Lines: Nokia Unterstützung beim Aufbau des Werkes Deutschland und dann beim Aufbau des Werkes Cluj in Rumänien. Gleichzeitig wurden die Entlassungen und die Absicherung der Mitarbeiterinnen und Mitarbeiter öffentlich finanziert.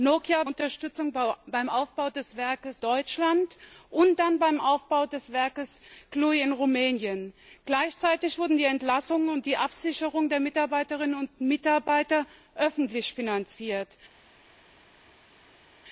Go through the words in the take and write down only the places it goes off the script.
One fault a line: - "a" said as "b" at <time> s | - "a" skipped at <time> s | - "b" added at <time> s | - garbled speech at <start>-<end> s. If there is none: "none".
none